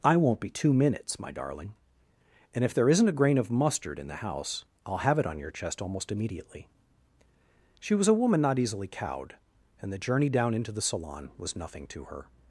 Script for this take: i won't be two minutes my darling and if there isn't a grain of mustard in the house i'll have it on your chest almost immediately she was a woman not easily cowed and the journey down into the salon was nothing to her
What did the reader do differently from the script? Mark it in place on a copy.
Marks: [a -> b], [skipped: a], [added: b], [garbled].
i won't be two minutes my darling and if there isn't a grain of mustard in the house i'll have it on your chest almost immediately she was a woman not easily cowed and the journey down into the salon was nothing to her